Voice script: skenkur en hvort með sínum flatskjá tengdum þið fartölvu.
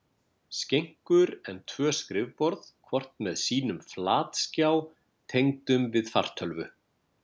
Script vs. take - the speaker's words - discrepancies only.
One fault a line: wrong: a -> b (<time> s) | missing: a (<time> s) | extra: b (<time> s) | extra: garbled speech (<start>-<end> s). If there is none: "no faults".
extra: tvö skrifborð (1.7 s)
wrong: þið -> við (6.0 s)